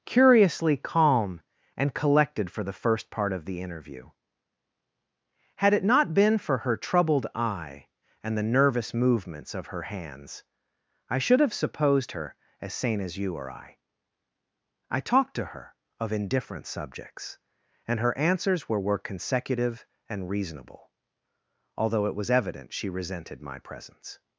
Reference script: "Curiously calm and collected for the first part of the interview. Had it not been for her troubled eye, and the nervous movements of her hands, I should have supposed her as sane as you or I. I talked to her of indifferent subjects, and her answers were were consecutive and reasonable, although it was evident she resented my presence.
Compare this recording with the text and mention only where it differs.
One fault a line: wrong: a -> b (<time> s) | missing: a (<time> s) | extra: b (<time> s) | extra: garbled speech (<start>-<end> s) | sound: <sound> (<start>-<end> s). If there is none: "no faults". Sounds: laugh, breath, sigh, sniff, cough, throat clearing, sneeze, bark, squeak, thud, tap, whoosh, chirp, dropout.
no faults